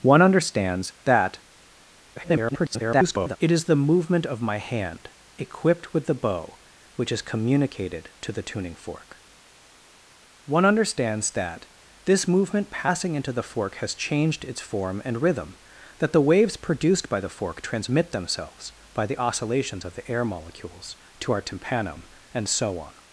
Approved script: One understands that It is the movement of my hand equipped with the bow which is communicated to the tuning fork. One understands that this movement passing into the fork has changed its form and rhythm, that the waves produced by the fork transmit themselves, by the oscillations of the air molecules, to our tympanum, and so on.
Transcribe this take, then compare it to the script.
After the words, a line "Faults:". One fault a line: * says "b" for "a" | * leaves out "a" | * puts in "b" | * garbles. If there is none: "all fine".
One understands that [garbled] It is the movement of my hand equipped with the bow which is communicated to the tuning fork. One understands that this movement passing into the fork has changed its form and rhythm, that the waves produced by the fork transmit themselves, by the oscillations of the air molecules, to our tympanum, and so on.
Faults:
* garbles